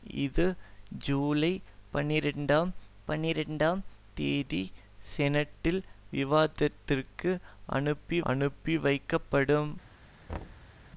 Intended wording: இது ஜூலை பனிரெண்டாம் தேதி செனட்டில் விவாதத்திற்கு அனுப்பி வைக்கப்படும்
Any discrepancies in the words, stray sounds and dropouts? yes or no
yes